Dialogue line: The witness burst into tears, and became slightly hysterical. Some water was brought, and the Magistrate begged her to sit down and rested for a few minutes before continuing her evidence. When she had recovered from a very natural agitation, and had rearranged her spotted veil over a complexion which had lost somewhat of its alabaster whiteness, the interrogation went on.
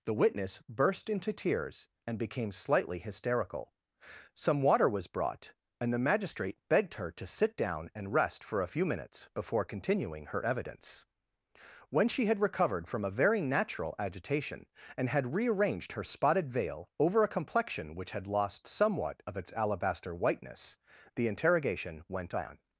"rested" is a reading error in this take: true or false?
true